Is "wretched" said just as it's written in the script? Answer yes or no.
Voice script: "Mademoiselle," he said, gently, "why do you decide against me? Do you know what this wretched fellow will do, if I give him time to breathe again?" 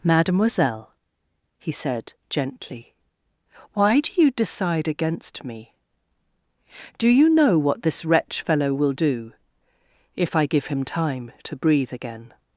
no